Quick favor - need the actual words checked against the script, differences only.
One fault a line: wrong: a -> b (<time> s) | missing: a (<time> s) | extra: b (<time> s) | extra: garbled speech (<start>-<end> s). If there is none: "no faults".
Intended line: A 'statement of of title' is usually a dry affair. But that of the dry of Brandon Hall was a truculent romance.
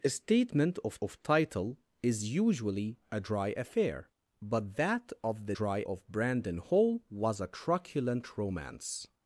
no faults